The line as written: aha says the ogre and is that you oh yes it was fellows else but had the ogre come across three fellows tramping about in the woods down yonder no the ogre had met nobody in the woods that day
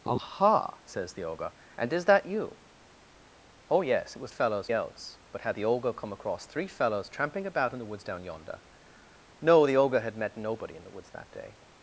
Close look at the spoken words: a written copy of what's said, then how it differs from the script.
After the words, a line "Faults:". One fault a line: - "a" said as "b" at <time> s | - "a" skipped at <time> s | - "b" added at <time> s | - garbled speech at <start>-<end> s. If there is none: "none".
aha says the ogre and is that you oh yes it was fellows else but had the ogre come across three fellows tramping about in the woods down yonder no the ogre had met nobody in the woods that day
Faults:
none